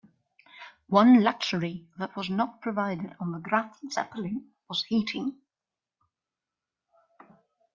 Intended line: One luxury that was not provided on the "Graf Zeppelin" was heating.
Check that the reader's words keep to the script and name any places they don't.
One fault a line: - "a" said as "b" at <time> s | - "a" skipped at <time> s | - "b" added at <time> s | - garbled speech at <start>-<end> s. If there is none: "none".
none